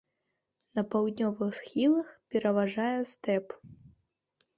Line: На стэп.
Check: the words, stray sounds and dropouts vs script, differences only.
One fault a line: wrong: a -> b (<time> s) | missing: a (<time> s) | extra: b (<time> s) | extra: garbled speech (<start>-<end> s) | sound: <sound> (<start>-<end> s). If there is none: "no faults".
extra: паўднёвых схілах пераважае (0.9 s)